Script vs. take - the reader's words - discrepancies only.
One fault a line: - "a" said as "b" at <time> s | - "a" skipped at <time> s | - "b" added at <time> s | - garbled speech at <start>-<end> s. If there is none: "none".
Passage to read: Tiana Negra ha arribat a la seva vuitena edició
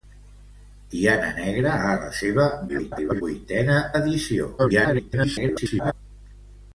- "arribat" skipped at 1.9 s
- garbled speech at 2.7-3.2 s
- garbled speech at 4.6-5.9 s